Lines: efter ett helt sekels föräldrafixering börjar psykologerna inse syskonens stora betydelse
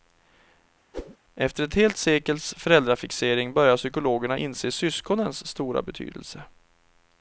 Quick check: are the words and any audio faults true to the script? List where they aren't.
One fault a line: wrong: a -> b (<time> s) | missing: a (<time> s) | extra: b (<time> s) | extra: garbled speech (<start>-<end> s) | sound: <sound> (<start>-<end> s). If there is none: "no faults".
sound: whoosh (0.9-1.2 s)